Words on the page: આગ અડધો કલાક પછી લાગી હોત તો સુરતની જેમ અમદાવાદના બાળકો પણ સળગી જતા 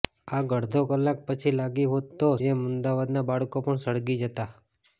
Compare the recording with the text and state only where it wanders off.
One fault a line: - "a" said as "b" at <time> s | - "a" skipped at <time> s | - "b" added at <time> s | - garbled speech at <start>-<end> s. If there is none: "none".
- "સુરતની" skipped at 2.3 s